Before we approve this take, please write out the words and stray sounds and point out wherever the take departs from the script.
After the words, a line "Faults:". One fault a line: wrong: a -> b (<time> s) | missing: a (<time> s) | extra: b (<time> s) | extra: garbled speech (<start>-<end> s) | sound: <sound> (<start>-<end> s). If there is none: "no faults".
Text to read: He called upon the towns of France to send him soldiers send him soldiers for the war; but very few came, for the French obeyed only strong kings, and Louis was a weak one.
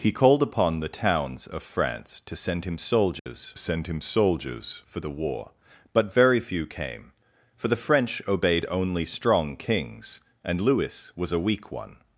He called upon the towns of France to send him soldiers send him soldiers for the war; but very few came, for the French obeyed only strong kings, and Louis was a weak one.
Faults:
sound: dropout (3.2-3.3 s)